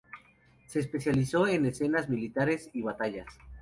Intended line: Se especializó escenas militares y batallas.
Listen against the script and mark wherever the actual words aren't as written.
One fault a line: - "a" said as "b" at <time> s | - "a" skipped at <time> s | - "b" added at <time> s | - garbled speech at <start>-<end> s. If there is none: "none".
- "en" added at 1.5 s